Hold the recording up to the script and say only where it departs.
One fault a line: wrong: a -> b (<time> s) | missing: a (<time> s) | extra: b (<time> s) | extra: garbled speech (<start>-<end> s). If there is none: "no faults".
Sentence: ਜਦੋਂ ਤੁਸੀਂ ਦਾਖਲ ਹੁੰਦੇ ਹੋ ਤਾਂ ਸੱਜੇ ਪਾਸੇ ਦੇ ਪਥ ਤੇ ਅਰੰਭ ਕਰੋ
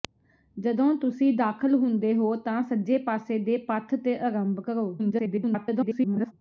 extra: garbled speech (5.0-6.3 s)